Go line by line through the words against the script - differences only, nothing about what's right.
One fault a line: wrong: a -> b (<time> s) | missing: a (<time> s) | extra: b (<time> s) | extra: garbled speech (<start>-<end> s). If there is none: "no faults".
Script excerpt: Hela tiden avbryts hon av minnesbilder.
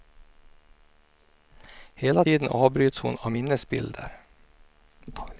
no faults